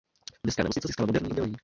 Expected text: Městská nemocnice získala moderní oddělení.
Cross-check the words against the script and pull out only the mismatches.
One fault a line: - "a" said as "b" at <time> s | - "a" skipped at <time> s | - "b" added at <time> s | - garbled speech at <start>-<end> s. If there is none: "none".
none